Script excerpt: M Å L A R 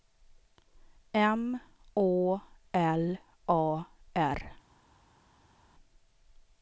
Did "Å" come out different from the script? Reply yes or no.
no